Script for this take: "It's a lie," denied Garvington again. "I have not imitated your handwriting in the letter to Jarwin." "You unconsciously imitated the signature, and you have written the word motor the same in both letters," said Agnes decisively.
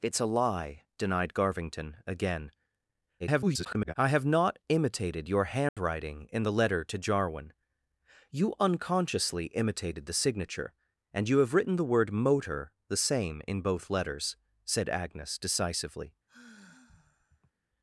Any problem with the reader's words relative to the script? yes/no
yes